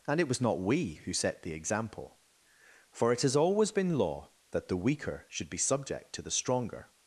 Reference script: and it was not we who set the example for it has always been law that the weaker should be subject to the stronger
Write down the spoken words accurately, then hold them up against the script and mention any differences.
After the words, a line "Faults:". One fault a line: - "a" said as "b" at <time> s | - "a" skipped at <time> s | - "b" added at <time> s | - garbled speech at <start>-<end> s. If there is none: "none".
and it was not we who set the example for it has always been law that the weaker should be subject to the stronger
Faults:
none